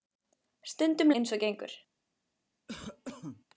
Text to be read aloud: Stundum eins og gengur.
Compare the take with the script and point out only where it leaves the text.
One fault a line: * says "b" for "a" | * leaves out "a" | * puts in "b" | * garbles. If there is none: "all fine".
all fine